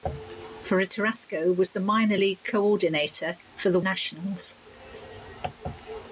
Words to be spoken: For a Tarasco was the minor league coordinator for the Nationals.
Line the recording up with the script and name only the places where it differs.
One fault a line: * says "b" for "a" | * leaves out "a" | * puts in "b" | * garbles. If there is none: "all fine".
all fine